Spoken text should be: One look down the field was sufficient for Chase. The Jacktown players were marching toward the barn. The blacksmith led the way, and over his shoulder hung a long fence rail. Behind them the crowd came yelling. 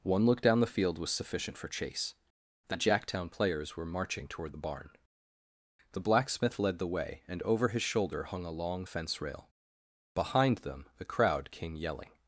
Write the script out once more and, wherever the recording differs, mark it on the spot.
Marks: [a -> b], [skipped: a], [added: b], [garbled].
One look down the field was sufficient for Chase. The Jacktown players were marching toward the barn. The blacksmith led the way, and over his shoulder hung a long fence rail. Behind them the crowd came yelling.